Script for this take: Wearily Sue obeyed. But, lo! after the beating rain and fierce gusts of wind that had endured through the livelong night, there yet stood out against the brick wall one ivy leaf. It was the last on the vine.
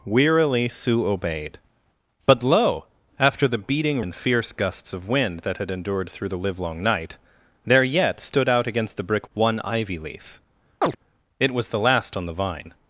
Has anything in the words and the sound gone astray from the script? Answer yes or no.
yes